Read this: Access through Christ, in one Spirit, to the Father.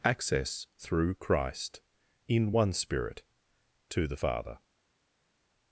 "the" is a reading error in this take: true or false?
false